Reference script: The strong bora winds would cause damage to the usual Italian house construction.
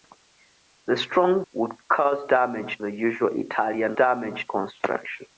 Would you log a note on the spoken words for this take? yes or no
yes